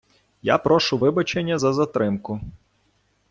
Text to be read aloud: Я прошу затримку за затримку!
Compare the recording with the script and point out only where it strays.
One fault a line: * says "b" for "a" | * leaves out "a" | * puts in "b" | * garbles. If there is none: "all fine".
* says "вибачення" for "затримку"